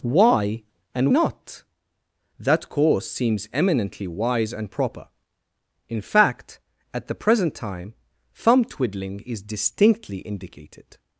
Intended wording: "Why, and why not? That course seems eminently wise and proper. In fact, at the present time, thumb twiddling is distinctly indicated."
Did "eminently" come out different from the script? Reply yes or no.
no